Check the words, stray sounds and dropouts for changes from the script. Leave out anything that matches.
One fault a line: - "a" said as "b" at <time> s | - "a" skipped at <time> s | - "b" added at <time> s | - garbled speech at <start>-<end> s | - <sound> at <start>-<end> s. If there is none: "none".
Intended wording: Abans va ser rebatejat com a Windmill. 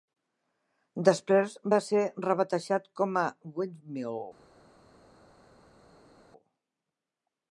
- "Abans" said as "Després" at 1.1 s